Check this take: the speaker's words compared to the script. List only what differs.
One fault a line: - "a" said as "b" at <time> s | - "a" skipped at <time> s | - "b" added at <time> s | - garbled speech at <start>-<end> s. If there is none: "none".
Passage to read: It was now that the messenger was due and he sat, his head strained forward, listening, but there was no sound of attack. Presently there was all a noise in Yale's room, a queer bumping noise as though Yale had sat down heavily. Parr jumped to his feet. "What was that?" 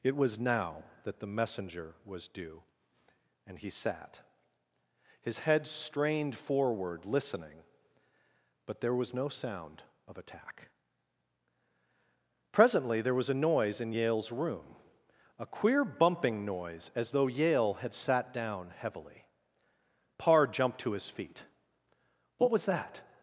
- "all" skipped at 13.3 s